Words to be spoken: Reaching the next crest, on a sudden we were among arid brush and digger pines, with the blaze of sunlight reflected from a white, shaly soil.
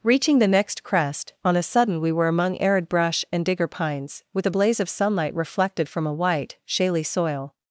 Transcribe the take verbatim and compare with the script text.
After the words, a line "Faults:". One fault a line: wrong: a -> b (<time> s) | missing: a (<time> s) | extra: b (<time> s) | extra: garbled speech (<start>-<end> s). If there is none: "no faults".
Reaching the next crest, on a sudden we were among arid brush and digger pines, with the blaze of sunlight reflected from a white, shaly soil.
Faults:
no faults